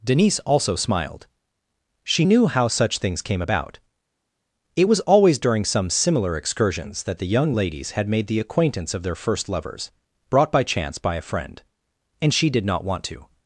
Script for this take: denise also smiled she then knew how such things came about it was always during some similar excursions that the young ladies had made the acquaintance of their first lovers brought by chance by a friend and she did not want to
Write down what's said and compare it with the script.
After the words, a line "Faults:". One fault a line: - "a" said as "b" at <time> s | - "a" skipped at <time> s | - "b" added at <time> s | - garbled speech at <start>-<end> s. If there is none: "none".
denise also smiled she knew how such things came about it was always during some similar excursions that the young ladies had made the acquaintance of their first lovers brought by chance by a friend and she did not want to
Faults:
- "then" skipped at 2.2 s